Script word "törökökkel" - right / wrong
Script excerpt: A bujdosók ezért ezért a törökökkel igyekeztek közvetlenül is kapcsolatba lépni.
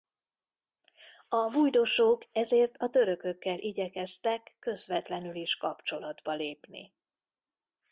right